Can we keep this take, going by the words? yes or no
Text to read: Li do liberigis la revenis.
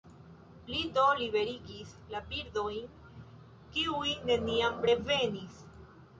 no